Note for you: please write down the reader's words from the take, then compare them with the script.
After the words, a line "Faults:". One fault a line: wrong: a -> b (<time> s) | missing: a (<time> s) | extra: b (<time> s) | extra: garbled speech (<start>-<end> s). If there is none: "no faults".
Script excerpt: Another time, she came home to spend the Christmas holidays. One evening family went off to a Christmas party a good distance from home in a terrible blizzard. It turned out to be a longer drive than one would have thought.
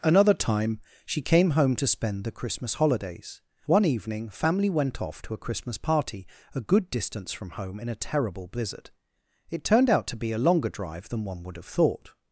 Another time, she came home to spend the Christmas holidays. One evening family went off to a Christmas party a good distance from home in a terrible blizzard. It turned out to be a longer drive than one would have thought.
Faults:
no faults